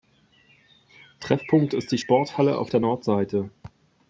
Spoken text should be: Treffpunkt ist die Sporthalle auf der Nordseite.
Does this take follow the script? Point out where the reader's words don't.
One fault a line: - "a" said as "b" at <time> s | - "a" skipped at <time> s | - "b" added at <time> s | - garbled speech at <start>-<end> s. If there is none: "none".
none